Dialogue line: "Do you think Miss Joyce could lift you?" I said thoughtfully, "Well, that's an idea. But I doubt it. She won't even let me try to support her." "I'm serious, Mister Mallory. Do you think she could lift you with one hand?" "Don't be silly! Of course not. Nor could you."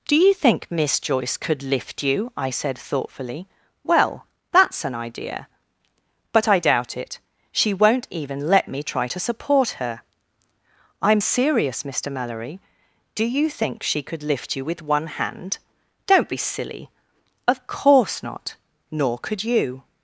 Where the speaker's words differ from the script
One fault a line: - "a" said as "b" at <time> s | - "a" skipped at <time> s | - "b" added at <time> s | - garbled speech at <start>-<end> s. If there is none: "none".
none